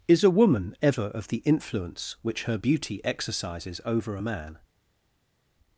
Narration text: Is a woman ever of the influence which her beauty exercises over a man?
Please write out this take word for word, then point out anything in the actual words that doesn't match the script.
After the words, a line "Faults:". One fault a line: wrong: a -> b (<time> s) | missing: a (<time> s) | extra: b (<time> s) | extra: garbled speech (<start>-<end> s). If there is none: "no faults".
Is a woman ever of the influence which her beauty exercises over a man?
Faults:
no faults